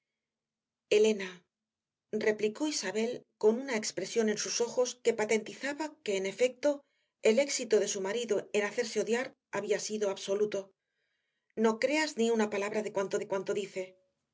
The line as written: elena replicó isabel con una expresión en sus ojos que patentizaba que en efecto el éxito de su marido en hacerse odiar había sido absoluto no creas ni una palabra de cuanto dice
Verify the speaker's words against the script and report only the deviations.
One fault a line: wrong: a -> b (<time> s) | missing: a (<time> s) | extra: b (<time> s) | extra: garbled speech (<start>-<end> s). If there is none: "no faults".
extra: de cuanto (13.2 s)